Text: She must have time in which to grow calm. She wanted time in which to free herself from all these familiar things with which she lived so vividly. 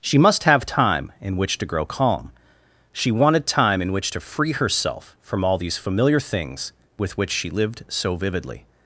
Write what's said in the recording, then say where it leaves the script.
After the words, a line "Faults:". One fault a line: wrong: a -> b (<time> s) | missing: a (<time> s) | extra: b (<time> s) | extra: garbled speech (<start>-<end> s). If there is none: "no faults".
She must have time in which to grow calm. She wanted time in which to free herself from all these familiar things with which she lived so vividly.
Faults:
no faults